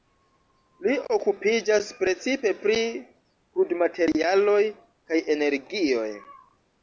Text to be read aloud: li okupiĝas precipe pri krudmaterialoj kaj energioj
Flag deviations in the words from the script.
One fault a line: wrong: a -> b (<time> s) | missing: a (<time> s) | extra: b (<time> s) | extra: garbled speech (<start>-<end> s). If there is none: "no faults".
no faults